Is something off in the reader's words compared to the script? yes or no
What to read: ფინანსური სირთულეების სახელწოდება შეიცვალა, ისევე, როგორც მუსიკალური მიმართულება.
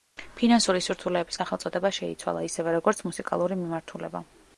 no